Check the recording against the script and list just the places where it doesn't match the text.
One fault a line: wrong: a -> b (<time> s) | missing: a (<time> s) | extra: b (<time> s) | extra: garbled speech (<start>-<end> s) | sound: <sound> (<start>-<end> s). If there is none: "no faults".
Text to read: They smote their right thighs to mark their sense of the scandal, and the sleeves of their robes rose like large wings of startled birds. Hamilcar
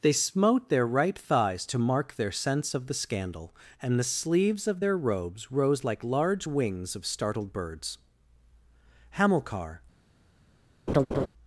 sound: laugh (10.9-11.3 s)